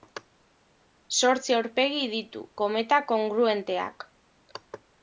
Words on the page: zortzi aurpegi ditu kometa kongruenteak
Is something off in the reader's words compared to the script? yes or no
no